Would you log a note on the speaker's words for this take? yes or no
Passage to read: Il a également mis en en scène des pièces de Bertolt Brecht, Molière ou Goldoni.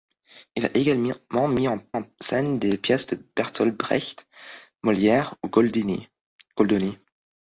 no